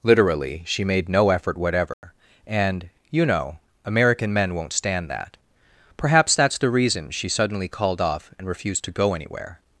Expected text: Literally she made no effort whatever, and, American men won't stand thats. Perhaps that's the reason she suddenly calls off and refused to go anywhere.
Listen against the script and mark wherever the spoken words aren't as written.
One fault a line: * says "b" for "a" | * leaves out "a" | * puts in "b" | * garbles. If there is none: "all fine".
* puts in "you know"
* says "that" for "thats"
* says "called" for "calls"